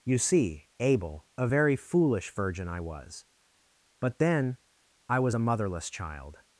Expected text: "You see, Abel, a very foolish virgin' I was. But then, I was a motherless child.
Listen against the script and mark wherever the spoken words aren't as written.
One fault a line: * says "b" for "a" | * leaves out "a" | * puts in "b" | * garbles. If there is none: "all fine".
all fine